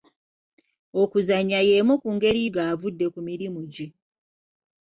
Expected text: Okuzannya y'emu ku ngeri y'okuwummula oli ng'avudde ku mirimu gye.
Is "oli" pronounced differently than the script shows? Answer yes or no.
yes